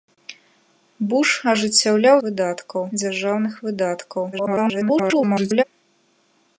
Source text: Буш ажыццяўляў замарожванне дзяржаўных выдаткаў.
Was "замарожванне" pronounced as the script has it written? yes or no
no